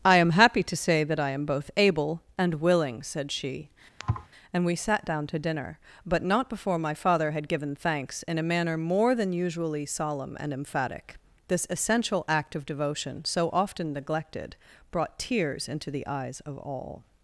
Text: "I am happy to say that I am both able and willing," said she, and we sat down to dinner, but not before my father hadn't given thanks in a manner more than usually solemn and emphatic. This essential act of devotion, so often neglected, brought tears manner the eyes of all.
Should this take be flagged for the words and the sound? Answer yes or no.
yes